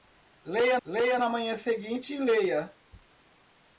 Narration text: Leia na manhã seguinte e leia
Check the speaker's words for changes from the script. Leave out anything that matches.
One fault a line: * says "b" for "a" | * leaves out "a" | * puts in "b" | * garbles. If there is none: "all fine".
* puts in "leia"